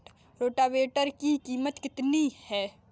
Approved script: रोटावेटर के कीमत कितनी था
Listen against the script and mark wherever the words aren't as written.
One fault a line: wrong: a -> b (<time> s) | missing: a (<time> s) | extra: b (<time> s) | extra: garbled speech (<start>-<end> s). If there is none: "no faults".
wrong: के -> की (1.1 s)
wrong: था -> है (2.4 s)